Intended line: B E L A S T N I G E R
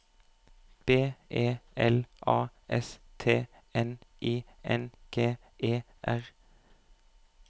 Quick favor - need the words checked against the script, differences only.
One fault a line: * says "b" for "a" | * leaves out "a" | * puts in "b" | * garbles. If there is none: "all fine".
* puts in "N"